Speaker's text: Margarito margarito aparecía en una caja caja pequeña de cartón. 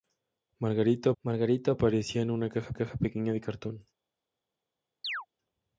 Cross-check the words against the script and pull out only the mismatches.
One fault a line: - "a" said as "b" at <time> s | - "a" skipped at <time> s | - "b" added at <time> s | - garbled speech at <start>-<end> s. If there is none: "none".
none